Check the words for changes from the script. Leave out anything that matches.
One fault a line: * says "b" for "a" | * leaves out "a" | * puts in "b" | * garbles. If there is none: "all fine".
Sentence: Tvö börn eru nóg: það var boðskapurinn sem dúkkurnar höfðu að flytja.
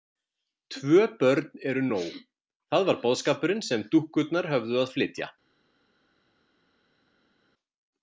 all fine